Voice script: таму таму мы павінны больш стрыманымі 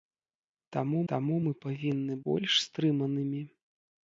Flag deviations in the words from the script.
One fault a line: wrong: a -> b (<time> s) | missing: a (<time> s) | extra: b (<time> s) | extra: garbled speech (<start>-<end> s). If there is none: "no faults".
no faults